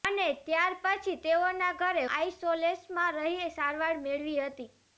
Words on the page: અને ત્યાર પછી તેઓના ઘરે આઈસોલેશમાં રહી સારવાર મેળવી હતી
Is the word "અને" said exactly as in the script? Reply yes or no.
yes